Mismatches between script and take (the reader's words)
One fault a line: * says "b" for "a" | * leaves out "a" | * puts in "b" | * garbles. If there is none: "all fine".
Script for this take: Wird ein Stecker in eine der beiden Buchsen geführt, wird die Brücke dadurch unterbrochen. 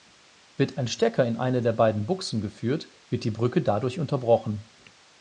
all fine